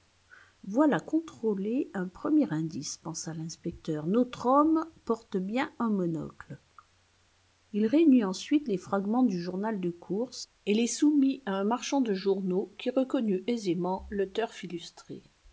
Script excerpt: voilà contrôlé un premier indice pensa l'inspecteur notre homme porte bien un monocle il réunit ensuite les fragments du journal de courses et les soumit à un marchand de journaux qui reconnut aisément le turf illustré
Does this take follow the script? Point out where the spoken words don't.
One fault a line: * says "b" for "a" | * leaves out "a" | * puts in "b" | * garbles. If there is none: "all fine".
all fine